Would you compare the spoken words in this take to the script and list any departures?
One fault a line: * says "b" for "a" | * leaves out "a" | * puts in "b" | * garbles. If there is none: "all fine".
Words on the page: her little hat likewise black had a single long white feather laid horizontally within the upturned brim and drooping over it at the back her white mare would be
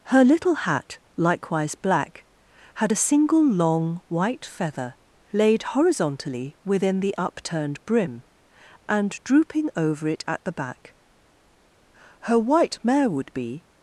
all fine